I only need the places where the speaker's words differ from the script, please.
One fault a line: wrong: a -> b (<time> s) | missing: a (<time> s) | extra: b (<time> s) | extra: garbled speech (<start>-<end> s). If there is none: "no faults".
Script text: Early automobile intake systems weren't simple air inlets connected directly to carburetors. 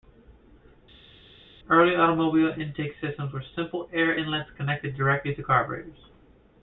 wrong: weren't -> were (3.3 s)